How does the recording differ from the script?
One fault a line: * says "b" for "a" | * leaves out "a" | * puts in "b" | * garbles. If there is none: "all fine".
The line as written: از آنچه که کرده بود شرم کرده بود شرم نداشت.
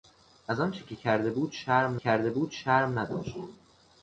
all fine